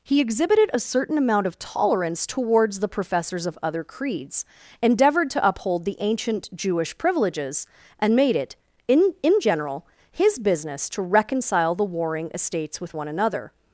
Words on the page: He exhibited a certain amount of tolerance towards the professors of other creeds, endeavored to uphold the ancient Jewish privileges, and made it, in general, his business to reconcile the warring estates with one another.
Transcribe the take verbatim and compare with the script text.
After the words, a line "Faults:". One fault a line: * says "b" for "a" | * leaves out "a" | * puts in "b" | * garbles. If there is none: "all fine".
He exhibited a certain amount of tolerance towards the professors of other creeds, endeavored to uphold the ancient Jewish privileges, and made it, in in general, his business to reconcile the warring estates with one another.
Faults:
* puts in "in"